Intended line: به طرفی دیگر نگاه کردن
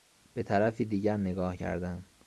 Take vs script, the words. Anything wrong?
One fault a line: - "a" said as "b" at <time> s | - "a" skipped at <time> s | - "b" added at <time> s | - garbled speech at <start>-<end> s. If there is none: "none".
none